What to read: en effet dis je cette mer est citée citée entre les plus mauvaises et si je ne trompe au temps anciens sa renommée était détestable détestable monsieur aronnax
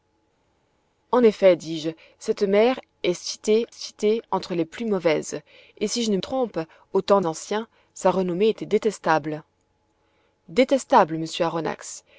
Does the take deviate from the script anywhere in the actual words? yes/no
no